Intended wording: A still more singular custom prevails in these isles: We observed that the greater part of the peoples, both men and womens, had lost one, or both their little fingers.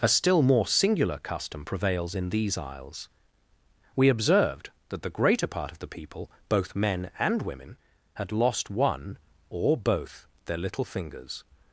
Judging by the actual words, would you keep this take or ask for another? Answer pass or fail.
fail